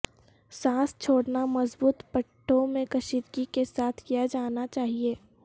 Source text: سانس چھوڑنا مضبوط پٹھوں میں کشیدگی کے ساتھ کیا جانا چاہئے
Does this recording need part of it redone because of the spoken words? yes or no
no